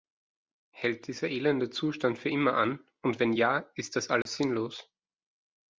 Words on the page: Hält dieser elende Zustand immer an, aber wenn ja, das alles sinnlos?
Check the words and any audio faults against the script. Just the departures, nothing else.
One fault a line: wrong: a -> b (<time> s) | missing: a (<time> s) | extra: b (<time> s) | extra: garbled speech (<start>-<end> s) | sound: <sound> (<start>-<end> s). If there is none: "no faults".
extra: für (2.2 s)
wrong: aber -> und (3.0 s)
extra: ist (3.7 s)
sound: dropout (4.2-4.3 s)